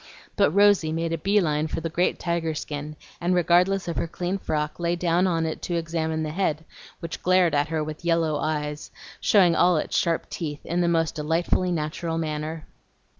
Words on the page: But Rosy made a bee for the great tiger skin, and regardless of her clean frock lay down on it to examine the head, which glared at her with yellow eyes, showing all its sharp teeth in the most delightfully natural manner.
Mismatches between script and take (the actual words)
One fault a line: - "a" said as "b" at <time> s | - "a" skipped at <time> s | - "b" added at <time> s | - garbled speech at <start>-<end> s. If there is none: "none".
- "line" added at 1.4 s